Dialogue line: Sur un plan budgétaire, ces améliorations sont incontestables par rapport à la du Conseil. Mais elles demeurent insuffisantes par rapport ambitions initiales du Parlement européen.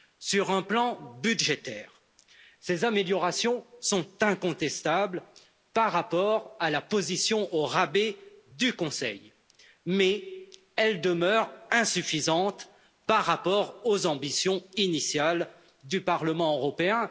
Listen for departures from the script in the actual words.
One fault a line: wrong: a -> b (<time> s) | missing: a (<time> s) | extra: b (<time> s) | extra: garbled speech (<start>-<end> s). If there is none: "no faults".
extra: position au rabais (6.8 s)
extra: aux (13.8 s)